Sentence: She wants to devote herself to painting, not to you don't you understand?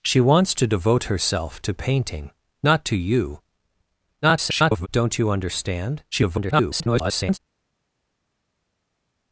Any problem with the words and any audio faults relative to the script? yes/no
yes